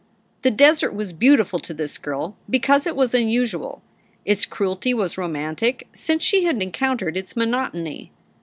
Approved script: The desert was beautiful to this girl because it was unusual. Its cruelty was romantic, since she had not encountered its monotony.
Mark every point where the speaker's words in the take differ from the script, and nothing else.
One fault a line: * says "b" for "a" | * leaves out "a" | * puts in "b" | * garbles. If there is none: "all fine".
* leaves out "not"